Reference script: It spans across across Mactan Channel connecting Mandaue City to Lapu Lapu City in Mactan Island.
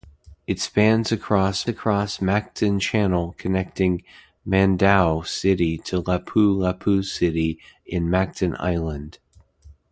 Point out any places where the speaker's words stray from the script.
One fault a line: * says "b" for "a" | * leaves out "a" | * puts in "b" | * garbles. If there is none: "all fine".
all fine